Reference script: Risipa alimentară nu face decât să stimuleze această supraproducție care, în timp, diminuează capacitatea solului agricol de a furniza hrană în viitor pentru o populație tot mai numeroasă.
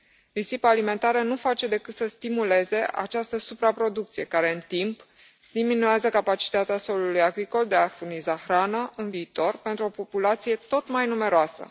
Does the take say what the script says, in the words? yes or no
yes